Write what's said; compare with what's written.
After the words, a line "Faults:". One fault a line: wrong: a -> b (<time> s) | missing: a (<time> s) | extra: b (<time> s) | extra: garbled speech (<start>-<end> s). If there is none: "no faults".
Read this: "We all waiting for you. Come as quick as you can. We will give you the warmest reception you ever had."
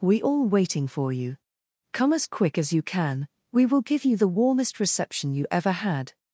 "We all waiting for you. Come as quick as you can. We will give you the warmest reception you ever had."
Faults:
no faults